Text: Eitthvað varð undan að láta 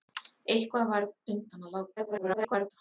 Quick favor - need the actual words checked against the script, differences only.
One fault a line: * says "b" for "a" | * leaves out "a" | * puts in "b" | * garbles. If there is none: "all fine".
* garbles